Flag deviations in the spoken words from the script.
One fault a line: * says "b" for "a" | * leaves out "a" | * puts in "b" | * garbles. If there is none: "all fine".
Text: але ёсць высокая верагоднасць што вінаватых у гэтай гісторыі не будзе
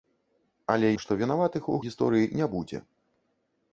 * leaves out "ёсць высокая верагоднасць"
* leaves out "гэтай"